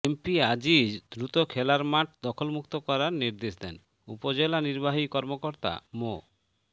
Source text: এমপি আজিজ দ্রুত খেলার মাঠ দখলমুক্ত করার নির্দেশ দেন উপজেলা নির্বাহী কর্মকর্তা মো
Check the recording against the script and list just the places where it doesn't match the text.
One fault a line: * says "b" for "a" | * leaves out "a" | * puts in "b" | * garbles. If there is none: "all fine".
all fine